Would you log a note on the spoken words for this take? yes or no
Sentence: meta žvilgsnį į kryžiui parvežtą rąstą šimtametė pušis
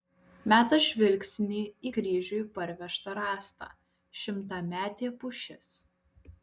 no